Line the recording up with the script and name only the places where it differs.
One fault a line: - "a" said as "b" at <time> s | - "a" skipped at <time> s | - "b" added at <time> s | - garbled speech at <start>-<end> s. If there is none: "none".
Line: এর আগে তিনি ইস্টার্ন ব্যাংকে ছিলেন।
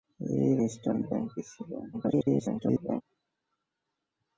- "আগে তিনি" skipped at 0.6 s
- garbled speech at 1.9-3.0 s